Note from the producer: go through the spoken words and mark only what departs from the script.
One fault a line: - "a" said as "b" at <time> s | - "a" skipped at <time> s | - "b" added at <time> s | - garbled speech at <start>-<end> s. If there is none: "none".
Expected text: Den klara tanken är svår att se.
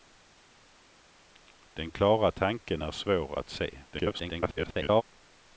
- garbled speech at 3.9-5.0 s